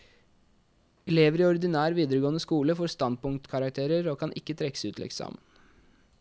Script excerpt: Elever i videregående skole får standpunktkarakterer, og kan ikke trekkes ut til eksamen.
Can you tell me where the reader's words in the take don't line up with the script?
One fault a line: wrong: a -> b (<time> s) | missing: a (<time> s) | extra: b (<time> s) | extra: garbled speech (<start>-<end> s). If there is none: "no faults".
extra: ordinær (1.5 s)